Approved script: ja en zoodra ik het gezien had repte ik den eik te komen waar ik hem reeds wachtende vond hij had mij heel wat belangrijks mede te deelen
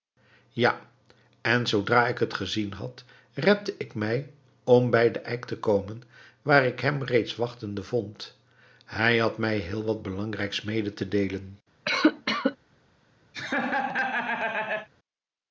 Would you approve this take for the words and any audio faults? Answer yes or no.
no